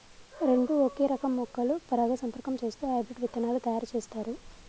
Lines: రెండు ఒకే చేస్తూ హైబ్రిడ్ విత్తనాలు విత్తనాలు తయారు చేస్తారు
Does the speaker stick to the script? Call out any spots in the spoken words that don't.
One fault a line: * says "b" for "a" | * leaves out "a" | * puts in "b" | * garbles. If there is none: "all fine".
* puts in "రకం మొక్కలు పరాగసంపర్కం"
* leaves out "విత్తనాలు"